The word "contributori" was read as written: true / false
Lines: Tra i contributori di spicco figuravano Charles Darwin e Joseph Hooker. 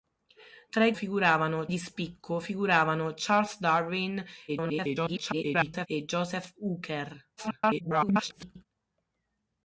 false